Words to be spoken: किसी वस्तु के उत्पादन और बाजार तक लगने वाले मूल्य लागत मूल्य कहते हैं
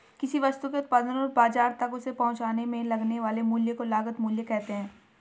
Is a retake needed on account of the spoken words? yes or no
yes